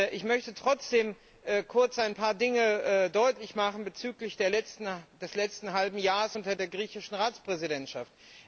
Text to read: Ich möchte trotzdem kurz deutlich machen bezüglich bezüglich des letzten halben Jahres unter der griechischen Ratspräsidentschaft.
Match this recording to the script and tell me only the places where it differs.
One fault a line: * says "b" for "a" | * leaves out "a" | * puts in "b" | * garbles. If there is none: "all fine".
* puts in "ein paar Dinge"
* leaves out "bezüglich"